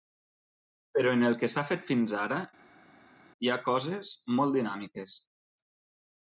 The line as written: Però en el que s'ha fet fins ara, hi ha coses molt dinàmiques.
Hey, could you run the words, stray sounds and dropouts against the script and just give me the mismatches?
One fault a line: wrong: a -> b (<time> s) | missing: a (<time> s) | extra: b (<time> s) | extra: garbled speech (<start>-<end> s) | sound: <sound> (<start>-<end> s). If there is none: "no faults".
no faults